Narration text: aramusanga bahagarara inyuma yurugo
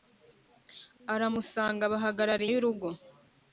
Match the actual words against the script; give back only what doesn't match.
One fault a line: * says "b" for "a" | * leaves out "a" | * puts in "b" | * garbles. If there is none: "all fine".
* leaves out "inyuma"